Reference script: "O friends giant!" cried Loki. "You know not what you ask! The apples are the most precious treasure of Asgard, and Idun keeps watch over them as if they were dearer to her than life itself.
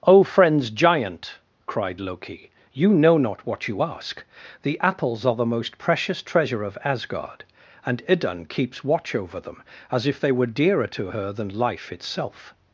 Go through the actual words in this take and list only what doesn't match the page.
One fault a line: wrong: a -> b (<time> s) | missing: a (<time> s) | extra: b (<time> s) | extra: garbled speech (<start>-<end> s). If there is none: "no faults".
no faults